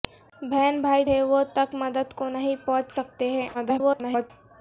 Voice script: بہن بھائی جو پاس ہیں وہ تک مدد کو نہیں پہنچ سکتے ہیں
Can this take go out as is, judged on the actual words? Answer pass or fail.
fail